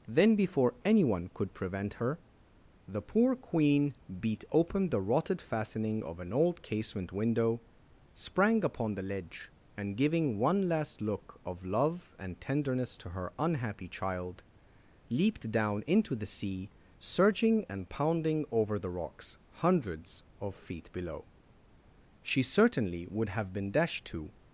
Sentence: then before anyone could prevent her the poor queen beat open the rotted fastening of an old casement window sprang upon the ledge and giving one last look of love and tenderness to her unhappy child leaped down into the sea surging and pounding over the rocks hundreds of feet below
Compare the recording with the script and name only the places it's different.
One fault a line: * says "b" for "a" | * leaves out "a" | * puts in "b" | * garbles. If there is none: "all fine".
* puts in "she certainly would have been dashed to"